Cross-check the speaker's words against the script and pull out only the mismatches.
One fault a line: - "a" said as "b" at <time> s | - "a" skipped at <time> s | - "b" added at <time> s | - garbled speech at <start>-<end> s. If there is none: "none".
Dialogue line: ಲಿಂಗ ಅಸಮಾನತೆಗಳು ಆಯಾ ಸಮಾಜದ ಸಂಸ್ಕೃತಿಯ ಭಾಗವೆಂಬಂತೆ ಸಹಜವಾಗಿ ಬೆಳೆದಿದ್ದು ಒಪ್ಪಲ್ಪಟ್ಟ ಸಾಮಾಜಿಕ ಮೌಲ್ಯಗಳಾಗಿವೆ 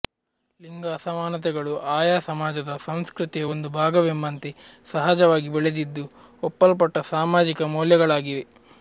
- "ಒಂದು" added at 3.5 s